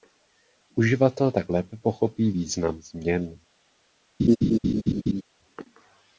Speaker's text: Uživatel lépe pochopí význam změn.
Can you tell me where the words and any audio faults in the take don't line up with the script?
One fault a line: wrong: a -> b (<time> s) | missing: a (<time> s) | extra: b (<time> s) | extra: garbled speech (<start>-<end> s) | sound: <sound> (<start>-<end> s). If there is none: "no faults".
extra: tak (1.3 s)
sound: laugh (4.2-5.2 s)